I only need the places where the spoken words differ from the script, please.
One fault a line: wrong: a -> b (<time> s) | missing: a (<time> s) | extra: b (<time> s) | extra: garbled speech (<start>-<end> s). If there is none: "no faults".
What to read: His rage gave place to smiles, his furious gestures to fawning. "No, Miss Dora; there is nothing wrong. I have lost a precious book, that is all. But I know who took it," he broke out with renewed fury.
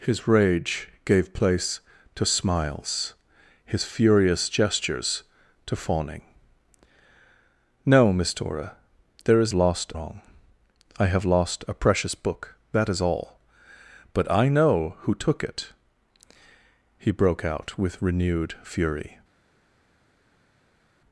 wrong: nothing -> lost (9.5 s)